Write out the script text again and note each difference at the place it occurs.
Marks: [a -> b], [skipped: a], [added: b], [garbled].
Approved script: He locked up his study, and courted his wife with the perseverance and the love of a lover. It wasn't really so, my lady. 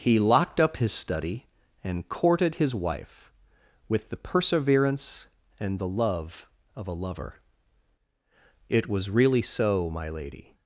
He locked up his study, and courted his wife with the perseverance and the love of a lover. It [wasn't -> was] really so, my lady.